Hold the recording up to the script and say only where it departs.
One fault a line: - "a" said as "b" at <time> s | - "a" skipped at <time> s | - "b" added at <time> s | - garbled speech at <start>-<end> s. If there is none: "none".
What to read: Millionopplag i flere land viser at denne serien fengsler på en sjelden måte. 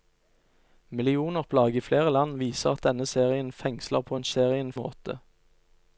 - "sjelden" said as "serien" at 4.3 s